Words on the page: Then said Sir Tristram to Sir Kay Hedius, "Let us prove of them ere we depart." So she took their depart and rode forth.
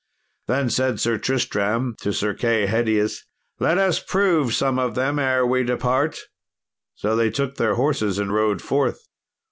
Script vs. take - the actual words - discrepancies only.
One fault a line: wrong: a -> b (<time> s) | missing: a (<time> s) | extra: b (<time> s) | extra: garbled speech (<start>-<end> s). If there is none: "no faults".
extra: some (4.5 s)
wrong: she -> they (7.2 s)
wrong: depart -> horses (7.7 s)